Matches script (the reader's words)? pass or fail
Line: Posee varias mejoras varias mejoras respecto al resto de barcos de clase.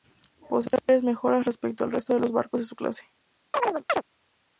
fail